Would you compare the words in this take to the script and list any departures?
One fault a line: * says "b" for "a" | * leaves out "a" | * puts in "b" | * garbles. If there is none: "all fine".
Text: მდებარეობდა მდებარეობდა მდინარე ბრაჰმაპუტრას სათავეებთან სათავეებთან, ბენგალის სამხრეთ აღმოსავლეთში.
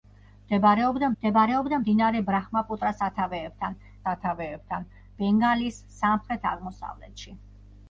all fine